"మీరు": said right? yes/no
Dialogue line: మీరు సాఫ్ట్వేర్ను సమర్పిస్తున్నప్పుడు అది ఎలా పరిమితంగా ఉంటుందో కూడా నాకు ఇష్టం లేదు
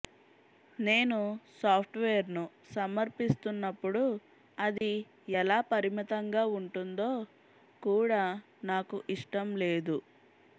no